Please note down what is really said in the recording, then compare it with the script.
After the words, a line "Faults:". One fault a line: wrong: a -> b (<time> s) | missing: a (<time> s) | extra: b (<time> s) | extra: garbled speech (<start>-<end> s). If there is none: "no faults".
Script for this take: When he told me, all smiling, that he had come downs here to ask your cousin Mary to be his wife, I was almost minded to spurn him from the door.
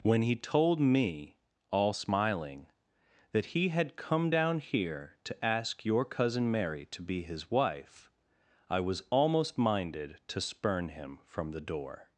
When he told me, all smiling, that he had come down here to ask your cousin Mary to be his wife, I was almost minded to spurn him from the door.
Faults:
wrong: downs -> down (4.3 s)